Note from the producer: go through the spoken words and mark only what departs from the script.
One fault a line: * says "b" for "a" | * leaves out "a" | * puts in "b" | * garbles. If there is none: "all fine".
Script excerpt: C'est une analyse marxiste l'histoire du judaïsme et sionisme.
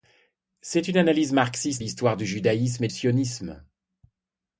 all fine